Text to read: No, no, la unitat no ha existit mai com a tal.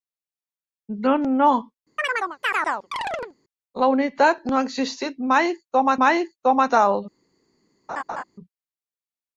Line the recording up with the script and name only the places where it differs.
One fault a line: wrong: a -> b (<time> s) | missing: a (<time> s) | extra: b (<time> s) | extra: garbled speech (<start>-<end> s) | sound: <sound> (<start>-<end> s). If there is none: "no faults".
sound: chirp (2.0-3.4 s)
extra: mai com (6.1 s)
sound: laugh (7.9-8.2 s)